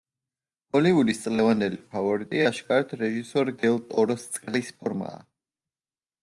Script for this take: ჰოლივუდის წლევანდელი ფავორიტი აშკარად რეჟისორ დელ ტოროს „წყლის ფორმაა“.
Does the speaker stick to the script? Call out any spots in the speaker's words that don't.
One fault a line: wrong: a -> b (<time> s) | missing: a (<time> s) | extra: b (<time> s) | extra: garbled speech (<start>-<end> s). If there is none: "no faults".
no faults